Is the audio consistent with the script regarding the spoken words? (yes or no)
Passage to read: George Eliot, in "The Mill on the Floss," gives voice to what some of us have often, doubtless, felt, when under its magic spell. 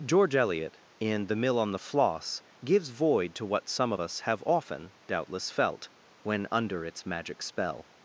no